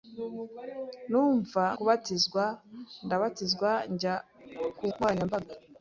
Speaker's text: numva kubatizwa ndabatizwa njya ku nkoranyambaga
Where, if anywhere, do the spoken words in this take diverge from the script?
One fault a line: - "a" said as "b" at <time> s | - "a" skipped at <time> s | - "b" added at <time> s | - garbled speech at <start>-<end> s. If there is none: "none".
none